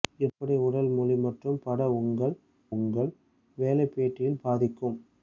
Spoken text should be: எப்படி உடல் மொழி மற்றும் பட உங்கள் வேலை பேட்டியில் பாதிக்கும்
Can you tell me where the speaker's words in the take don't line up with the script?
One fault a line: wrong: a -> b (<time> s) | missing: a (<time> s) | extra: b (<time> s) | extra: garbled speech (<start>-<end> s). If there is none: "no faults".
extra: உங்கள் (2.7 s)